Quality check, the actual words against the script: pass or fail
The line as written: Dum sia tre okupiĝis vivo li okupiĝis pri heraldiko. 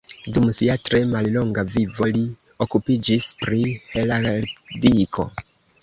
fail